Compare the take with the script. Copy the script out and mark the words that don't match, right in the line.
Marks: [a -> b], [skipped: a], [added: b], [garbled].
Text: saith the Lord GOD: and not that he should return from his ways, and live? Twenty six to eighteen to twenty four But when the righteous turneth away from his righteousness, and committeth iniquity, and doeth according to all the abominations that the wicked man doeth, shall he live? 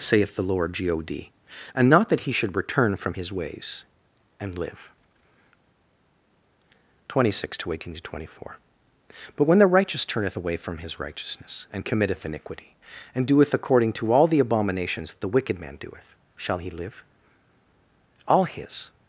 saith the Lord GOD: and not that he should return from his ways, and live? Twenty six to eighteen to twenty four But when the righteous turneth away from his righteousness, and committeth iniquity, and doeth according to all the abominations that the wicked man doeth, shall he live? [added: All his]